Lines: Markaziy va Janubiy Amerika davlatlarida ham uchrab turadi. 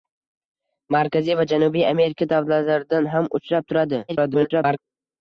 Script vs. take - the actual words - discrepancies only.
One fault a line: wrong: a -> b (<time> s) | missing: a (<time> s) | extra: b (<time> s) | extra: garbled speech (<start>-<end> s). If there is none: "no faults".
extra: garbled speech (4.1-4.8 s)